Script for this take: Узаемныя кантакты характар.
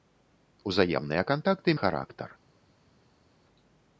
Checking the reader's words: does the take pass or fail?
pass